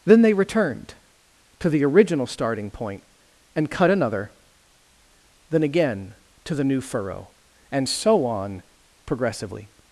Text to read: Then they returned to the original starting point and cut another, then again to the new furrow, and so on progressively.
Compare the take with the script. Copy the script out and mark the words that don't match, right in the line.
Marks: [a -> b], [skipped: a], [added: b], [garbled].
Then they returned to the original starting point and cut another, then again to the new furrow, and so on progressively.